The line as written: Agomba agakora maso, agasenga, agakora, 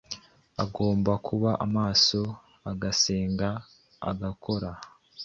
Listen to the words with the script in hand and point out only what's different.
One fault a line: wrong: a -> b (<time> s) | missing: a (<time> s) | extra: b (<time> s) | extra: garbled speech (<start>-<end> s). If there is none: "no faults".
wrong: agakora -> kuba (1.3 s)